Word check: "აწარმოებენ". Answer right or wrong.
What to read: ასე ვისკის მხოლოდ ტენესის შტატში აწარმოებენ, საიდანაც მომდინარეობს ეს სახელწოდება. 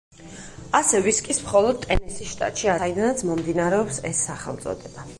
wrong